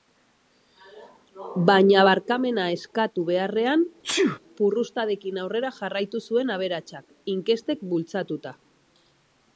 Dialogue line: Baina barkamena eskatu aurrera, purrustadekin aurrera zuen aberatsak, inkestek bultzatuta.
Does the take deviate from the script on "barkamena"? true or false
false